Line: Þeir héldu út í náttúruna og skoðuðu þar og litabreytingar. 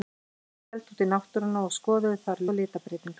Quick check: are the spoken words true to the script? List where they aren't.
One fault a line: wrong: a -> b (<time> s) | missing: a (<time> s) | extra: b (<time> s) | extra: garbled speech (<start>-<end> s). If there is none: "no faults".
no faults